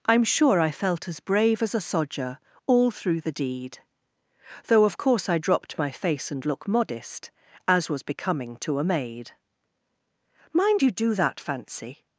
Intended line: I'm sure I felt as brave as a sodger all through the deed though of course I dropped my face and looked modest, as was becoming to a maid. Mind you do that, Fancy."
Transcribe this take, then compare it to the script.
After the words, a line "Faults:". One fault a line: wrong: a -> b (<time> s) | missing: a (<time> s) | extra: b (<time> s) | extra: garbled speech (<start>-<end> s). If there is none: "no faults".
I'm sure I felt as brave as a sodger all through the deed though of course I dropped my face and look modest, as was becoming to a maid. Mind you do that, Fancy."
Faults:
wrong: looked -> look (6.5 s)